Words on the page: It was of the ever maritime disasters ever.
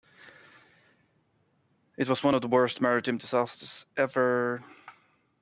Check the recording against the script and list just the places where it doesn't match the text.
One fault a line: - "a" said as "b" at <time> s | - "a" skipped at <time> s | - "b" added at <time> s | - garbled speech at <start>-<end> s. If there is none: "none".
- "one" added at 2.2 s
- "ever" said as "worst" at 2.5 s